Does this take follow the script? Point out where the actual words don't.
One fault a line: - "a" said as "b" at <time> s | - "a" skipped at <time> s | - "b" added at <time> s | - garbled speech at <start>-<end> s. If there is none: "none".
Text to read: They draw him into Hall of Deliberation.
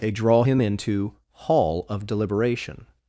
none